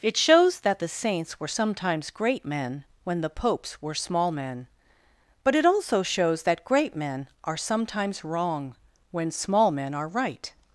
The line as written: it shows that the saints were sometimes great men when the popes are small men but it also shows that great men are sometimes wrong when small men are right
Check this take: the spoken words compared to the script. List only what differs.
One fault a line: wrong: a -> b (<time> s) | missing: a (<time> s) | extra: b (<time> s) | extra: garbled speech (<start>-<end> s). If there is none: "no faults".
wrong: are -> were (3.8 s)